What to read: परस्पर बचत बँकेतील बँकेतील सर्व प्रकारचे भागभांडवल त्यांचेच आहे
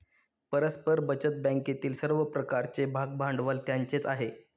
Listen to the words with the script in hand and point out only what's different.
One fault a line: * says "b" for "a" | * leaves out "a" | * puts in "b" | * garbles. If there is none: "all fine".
* leaves out "बँकेतील"